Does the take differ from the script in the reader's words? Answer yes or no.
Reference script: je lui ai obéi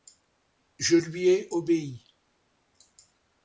no